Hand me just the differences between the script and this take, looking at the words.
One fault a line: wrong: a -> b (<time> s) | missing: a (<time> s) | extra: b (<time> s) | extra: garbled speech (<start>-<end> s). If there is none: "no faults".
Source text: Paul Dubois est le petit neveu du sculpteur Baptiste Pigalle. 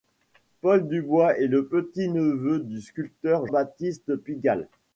no faults